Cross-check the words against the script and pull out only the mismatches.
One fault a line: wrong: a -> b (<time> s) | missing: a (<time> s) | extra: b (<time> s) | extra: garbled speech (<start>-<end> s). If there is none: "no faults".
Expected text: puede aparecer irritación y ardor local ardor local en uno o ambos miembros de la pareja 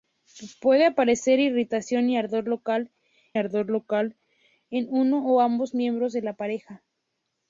no faults